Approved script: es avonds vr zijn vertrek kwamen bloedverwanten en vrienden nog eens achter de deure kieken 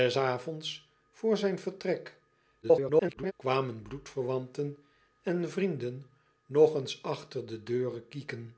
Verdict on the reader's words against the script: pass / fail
fail